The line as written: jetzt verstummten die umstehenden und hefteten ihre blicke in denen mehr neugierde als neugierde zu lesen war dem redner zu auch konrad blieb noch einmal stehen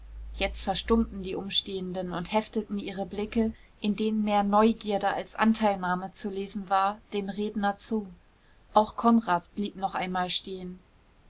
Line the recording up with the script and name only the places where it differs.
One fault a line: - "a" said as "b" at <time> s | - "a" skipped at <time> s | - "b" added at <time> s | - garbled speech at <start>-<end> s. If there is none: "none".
- "neugierde" said as "anteilnahme" at 5.3 s